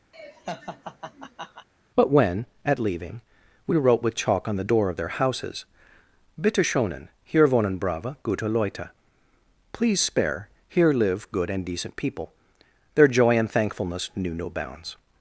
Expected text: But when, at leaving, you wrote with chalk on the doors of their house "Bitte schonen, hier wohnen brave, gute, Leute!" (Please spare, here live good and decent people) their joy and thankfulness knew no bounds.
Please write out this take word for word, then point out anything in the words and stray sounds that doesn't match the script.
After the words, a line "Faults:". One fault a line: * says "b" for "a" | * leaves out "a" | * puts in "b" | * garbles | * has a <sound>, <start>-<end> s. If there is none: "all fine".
But when, at leaving, we wrote with chalk on the door of their houses "Bitte schonen, hier wohnen brave, gute, Leute!" (Please spare, here live good and decent people) their joy and thankfulness knew no bounds.
Faults:
* has a laugh, 0.1-1.7 s
* says "we" for "you"
* says "door" for "doors"
* says "houses" for "house"